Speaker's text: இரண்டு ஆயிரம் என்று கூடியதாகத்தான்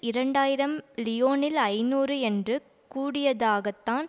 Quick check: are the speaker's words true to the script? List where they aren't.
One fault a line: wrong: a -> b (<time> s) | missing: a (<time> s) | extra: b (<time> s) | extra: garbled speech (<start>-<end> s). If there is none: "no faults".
extra: லியோனில் ஐநூறு (1.0 s)